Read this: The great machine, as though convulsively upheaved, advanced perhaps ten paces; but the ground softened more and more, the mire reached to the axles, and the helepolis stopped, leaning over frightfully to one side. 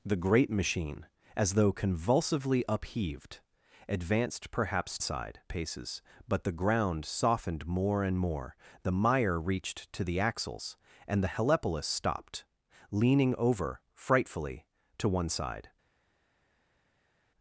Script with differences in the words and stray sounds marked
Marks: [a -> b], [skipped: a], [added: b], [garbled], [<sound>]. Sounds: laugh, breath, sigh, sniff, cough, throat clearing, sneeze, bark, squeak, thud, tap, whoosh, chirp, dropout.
The great machine, as though convulsively upheaved, advanced perhaps [ten -> side] paces; but the ground softened more and more, the mire reached to the axles, and the helepolis stopped, leaning over frightfully to one side.